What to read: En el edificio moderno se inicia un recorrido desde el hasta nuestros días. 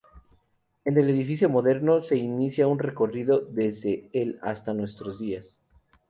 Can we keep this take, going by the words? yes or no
yes